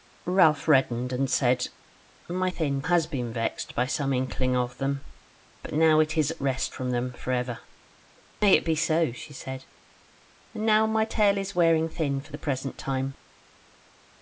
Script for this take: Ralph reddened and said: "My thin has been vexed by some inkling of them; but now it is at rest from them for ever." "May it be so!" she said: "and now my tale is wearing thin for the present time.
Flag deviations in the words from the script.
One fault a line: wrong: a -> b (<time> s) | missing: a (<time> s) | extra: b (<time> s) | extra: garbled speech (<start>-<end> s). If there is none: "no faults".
no faults